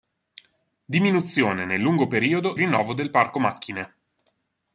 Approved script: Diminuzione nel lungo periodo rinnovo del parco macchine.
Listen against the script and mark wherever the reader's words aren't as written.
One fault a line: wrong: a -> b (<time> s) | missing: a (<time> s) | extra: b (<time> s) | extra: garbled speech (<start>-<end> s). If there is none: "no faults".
no faults